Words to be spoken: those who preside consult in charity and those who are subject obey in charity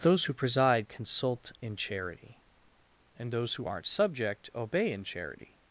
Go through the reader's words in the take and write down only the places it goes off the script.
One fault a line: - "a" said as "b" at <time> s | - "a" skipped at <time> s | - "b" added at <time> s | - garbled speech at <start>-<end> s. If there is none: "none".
- "are" said as "aren't" at 3.7 s